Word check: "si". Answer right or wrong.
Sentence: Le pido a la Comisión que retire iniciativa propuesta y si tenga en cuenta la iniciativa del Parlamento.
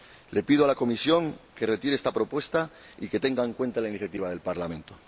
wrong